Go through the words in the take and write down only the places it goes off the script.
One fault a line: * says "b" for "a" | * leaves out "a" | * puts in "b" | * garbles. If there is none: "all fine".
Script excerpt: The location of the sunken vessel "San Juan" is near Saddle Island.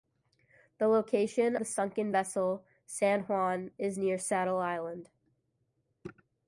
* leaves out "of"